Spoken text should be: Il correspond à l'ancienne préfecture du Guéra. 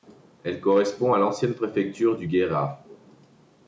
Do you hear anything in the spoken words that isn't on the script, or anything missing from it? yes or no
yes